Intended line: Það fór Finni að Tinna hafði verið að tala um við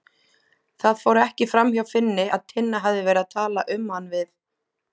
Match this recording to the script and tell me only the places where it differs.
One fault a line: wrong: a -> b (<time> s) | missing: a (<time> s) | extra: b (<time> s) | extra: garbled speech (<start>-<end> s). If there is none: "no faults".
extra: ekki framhjá (1.2 s)
extra: hann (4.0 s)